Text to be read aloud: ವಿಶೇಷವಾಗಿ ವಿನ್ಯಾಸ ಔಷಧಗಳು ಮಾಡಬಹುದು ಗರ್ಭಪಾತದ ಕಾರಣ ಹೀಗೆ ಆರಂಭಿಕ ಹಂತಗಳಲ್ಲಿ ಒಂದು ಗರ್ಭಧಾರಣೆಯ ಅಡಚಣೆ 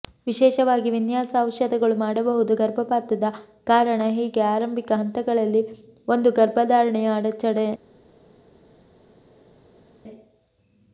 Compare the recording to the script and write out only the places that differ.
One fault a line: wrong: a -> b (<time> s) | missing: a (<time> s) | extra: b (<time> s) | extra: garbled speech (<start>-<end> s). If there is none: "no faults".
no faults